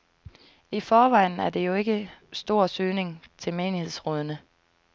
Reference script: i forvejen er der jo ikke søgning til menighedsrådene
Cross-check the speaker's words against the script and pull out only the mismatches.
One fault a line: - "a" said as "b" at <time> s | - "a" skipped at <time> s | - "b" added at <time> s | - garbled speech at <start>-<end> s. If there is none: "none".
- "stor" added at 2.3 s